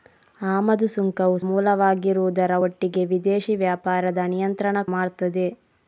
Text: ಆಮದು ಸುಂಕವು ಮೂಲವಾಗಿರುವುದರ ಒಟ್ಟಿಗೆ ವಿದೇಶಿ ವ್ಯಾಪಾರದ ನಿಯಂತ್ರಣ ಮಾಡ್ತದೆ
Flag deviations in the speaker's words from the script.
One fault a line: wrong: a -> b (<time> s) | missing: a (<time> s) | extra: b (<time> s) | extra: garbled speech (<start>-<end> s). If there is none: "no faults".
no faults